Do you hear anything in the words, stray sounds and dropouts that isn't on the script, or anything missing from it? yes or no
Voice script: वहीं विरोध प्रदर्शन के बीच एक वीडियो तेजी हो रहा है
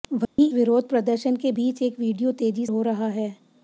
yes